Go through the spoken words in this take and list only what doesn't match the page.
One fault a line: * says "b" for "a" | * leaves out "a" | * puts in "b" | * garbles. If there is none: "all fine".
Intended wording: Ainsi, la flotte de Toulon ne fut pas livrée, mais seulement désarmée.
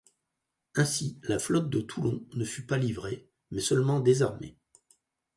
all fine